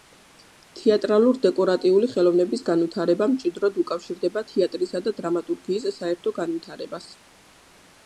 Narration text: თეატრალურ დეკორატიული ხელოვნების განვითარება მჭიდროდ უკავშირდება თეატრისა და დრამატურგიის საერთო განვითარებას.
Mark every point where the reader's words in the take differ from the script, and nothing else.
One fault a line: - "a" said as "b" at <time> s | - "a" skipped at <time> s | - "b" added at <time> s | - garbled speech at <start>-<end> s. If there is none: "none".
none